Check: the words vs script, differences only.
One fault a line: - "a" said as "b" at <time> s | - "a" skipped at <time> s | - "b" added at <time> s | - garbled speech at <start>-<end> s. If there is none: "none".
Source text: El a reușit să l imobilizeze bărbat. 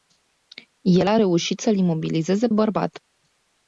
none